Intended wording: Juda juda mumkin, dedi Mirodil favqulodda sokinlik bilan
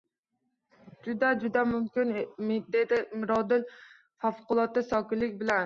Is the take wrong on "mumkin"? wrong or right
right